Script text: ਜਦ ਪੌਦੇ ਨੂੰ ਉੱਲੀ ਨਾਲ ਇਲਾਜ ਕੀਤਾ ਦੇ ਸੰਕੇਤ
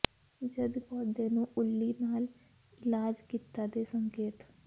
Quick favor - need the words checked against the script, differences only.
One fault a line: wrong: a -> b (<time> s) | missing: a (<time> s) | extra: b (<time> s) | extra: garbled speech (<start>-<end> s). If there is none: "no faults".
no faults